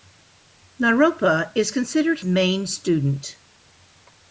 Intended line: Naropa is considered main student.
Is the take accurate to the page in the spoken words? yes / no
yes